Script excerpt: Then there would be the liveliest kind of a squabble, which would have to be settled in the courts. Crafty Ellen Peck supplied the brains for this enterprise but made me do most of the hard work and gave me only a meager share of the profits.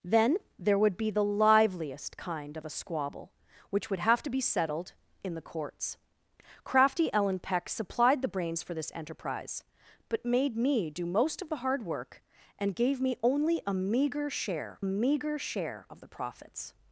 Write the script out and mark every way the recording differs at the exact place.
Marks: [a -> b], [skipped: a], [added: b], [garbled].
Then there would be the liveliest kind of a squabble, which would have to be settled in the courts. Crafty Ellen Peck supplied the brains for this enterprise but made me do most of the hard work and gave me only a meager share [added: meager share] of the profits.